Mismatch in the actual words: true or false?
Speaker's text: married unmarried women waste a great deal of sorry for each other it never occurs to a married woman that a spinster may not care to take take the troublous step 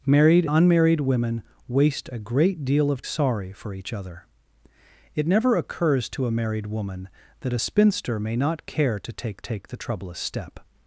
false